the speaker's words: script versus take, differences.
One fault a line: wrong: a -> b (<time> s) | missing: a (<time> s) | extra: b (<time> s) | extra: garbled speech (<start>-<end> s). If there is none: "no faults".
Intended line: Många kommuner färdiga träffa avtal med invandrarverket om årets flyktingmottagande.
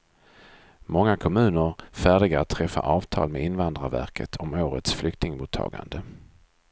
extra: att (2.4 s)